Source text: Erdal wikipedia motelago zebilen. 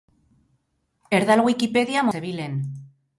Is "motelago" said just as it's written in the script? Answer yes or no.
no